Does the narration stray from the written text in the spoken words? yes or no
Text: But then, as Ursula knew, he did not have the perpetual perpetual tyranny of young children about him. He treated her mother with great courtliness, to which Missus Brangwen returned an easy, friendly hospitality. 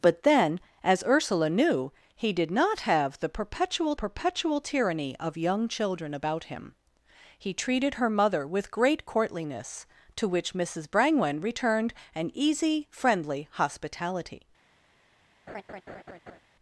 no